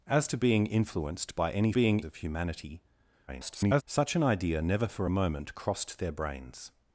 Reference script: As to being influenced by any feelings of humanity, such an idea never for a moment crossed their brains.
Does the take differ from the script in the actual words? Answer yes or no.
yes